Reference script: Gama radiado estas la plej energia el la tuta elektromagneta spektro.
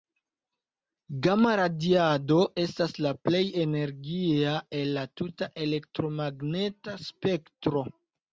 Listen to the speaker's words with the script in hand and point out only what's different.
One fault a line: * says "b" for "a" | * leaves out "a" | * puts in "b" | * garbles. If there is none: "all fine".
all fine